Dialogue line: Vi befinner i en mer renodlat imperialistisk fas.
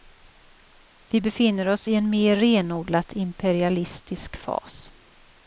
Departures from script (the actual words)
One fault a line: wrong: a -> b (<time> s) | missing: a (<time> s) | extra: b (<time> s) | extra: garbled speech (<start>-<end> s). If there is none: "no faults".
extra: oss (1.7 s)